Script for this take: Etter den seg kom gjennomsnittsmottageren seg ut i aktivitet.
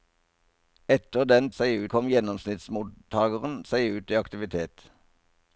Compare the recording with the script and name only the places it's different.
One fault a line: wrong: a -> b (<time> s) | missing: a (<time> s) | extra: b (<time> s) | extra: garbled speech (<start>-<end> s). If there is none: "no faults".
no faults